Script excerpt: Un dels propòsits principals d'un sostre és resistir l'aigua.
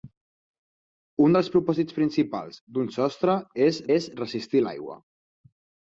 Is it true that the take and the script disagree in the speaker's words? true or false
true